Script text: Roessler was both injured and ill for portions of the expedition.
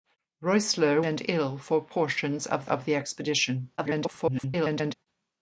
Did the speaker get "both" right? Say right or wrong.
wrong